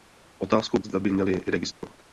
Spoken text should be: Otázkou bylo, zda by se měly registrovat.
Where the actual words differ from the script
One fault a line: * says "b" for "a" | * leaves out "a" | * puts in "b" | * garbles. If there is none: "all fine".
* leaves out "bylo"
* leaves out "se"